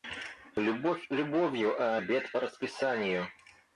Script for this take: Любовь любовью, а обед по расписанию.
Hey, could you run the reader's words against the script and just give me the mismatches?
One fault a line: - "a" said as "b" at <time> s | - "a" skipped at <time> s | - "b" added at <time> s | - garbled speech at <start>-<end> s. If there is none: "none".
none